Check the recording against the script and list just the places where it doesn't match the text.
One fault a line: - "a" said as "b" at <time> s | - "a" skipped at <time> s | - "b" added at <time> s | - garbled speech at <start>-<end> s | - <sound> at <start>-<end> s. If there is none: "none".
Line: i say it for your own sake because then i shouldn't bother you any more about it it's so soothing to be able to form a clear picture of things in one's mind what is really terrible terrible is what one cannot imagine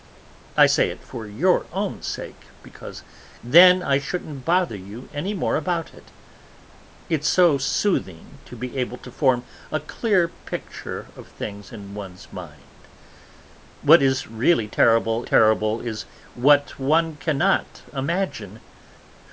none